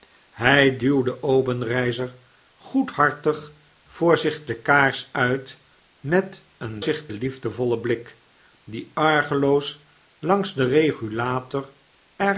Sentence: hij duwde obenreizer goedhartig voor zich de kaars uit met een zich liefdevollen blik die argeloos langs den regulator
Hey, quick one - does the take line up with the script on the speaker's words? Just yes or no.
yes